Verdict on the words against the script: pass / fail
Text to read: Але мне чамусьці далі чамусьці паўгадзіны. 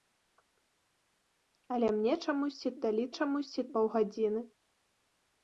pass